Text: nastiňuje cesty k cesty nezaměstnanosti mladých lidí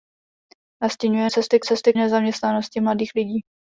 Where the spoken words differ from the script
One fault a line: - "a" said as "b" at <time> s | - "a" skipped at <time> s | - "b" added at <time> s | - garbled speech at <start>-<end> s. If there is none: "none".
none